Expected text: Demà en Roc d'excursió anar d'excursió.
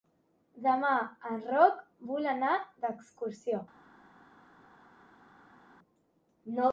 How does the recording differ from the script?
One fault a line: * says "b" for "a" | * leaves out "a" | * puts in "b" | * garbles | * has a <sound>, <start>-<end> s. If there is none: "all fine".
* says "vol" for "d'excursió"